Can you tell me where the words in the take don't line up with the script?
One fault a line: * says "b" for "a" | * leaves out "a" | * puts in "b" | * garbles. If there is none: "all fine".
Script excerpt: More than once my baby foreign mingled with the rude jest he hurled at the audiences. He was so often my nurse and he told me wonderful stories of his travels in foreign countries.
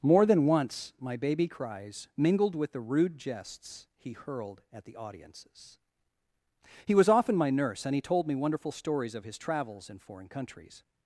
* says "cries" for "foreign"
* says "jests" for "jest"
* leaves out "so"